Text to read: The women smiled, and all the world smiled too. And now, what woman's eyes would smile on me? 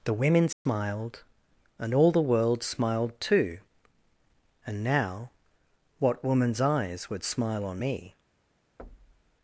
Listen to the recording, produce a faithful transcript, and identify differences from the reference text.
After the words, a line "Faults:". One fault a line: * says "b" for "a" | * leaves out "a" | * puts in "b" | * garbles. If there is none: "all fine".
The women smiled, and all the world smiled too. And now, what woman's eyes would smile on me?
Faults:
all fine